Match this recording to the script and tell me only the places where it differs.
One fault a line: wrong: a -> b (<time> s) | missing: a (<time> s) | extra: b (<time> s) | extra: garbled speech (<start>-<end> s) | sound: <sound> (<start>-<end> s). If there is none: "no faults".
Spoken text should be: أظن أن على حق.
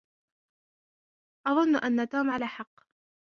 extra: توم (2.1 s)